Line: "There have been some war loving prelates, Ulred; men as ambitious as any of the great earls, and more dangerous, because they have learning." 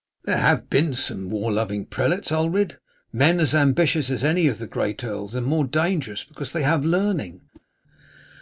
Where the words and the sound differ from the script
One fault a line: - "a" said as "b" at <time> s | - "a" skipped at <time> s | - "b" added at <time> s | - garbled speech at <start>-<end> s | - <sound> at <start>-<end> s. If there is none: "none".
- whoosh at 7.5-7.7 s